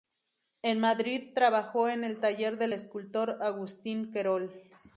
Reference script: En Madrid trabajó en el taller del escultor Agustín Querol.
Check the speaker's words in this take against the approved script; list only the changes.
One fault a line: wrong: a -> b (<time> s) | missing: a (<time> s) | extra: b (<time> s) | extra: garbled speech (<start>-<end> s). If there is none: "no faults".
no faults